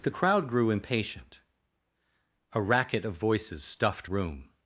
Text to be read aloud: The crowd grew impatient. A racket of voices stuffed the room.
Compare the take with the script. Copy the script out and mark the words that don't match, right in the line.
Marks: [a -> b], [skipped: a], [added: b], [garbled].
The crowd grew impatient. A racket of voices stuffed [skipped: the] room.